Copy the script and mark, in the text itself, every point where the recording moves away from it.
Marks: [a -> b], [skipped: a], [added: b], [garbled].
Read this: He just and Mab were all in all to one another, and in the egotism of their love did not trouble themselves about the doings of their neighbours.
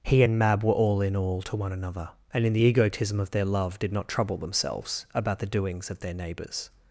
He [skipped: just] and Mab were all in all to one another, and in the egotism of their love did not trouble themselves about the doings of their neighbours.